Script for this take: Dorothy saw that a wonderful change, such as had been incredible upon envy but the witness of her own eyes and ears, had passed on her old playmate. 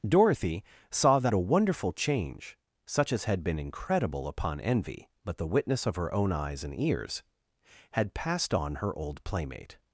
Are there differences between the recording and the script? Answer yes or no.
no